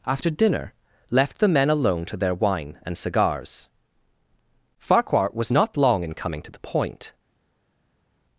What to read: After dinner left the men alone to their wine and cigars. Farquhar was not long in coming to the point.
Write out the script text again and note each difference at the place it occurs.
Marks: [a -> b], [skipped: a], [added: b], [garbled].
After dinner left the men alone to their wine and cigars. Farquhar was not long in coming to the point.